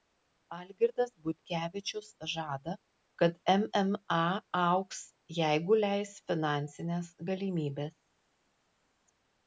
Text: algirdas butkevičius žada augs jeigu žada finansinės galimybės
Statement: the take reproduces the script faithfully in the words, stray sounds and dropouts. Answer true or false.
false